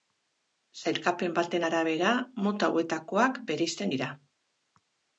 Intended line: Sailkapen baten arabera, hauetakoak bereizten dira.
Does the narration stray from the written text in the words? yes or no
yes